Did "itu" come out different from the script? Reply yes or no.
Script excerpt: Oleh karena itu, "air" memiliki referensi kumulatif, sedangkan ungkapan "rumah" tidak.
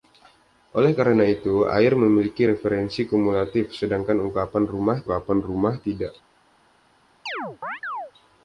no